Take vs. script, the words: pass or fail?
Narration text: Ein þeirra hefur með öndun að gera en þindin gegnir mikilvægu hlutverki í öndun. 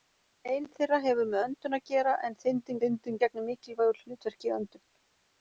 fail